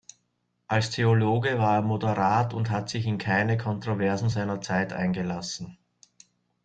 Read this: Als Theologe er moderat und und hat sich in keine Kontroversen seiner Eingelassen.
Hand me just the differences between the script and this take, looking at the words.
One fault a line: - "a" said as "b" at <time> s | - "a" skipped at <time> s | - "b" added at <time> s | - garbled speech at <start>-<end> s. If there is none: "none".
- "war" added at 1.6 s
- "und" skipped at 2.7 s
- "Zeit" added at 4.6 s